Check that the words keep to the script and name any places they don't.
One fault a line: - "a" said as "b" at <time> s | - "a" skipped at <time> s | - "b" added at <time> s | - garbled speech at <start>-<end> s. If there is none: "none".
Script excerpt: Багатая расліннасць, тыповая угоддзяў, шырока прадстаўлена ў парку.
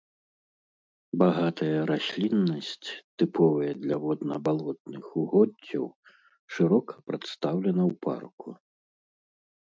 - "для водна балотных" added at 3.8 s